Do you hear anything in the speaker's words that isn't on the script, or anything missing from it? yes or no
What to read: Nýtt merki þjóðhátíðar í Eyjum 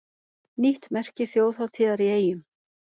no